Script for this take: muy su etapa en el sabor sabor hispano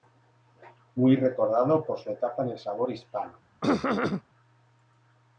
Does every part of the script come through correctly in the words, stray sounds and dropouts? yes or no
no